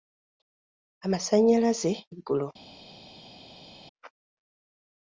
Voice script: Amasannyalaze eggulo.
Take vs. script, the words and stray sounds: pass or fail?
pass